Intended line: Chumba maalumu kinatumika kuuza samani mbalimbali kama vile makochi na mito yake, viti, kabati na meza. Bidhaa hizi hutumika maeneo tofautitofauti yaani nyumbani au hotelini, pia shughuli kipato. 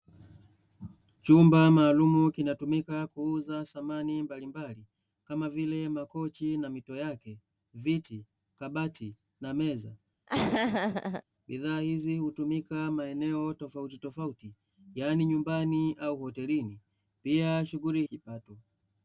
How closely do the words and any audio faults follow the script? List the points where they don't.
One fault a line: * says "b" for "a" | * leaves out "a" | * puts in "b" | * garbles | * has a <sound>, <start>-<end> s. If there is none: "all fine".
* has a laugh, 10.3-11.2 s